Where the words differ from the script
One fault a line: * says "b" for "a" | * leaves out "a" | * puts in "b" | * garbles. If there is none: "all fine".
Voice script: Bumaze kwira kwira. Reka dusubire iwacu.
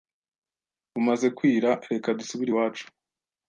* leaves out "kwira"